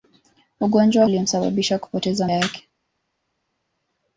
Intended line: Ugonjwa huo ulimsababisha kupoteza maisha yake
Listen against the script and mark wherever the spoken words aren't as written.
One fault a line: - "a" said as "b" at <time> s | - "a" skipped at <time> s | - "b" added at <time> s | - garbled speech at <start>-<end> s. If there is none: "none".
- "huo" skipped at 1.1 s
- "maisha" skipped at 2.3 s